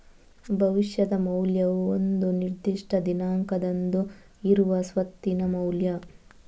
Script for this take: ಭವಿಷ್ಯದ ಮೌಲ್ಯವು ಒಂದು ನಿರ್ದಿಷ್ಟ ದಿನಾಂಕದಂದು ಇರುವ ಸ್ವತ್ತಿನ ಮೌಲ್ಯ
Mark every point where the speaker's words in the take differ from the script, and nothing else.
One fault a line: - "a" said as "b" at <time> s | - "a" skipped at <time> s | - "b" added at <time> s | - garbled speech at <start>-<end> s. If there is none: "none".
none